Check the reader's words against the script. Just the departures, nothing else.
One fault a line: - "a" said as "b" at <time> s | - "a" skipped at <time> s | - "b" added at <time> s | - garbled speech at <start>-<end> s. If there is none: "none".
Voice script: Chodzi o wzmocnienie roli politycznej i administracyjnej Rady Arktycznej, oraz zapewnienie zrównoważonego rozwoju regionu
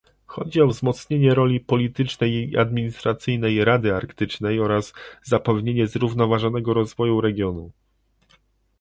none